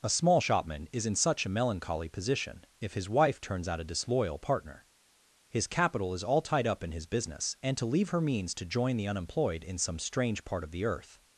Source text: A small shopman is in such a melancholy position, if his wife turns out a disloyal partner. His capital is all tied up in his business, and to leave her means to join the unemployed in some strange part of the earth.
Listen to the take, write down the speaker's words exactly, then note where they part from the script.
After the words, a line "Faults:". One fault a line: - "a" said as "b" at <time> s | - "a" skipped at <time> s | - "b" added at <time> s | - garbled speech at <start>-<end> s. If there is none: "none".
A small shopman is in such a melancholy position, if his wife turns out a disloyal partner. His capital is all tied up in his business, and to leave her means to join the unemployed in some strange part of the earth.
Faults:
none